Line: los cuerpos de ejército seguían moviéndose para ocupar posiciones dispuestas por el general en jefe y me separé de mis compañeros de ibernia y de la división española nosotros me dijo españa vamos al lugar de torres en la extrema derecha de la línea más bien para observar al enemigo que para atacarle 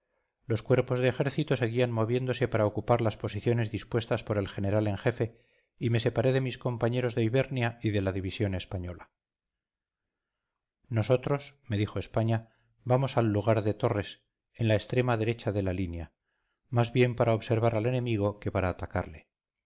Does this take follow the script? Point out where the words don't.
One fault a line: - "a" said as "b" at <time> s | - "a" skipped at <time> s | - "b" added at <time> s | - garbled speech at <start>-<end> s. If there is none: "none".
- "las" added at 3.0 s